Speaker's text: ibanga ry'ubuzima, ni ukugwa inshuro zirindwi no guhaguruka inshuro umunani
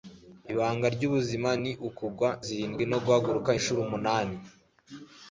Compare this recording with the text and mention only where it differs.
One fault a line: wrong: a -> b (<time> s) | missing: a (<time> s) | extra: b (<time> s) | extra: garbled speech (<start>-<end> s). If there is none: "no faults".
missing: inshuro (2.3 s)